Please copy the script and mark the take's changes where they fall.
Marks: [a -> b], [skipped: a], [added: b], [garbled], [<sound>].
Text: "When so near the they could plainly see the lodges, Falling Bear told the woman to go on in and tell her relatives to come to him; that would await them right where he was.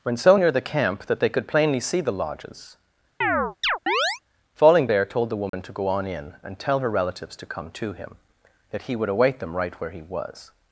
"When so near the [added: camp that] they could plainly see the lodges, [chirp] Falling Bear told the woman [dropout] to go on in and tell her relatives to come to him; that [added: he] would await them right where he was.